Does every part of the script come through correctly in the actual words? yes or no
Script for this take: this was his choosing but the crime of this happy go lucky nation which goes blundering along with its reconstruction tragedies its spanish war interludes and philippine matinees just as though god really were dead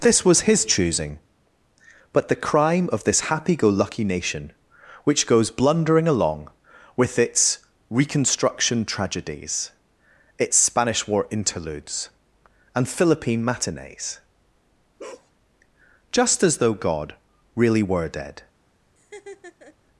yes